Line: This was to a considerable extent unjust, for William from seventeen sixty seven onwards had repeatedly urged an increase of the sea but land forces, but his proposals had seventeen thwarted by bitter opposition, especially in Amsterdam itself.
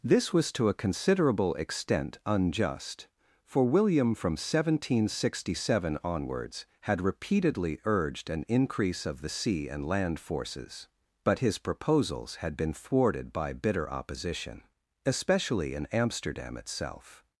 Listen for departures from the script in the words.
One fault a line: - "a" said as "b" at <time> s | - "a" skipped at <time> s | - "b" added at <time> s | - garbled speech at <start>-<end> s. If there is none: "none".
- "but" said as "and" at 9.7 s
- "seventeen" said as "been" at 12.6 s